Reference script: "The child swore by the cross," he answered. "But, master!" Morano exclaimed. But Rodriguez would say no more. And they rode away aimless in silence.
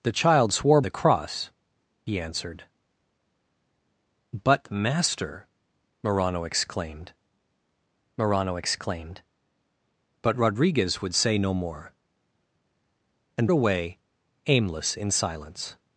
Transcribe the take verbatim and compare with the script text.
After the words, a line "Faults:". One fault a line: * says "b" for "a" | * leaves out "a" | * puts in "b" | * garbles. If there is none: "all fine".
"The child swore the cross," he answered. "But, master!" Morano exclaimed morano exclaimed. But Rodriguez would say no more. And away aimless in silence.
Faults:
* leaves out "by"
* puts in "morano exclaimed"
* leaves out "they rode"